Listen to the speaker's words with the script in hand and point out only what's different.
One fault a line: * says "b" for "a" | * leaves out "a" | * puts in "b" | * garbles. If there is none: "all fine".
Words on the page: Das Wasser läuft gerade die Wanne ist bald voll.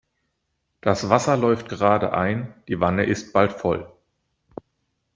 * puts in "ein"